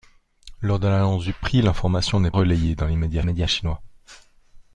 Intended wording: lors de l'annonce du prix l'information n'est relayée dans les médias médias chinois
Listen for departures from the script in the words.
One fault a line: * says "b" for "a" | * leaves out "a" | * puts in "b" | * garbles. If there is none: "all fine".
all fine